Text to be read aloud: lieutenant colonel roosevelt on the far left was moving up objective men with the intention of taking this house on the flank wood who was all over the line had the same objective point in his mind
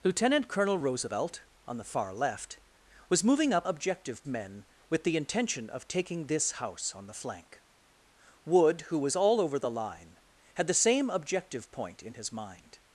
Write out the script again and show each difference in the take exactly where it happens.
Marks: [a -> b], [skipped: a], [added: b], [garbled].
lieutenant colonel roosevelt on the far left was moving up objective men with the intention of taking this house on the flank wood who was all over the line had the same objective point in his mind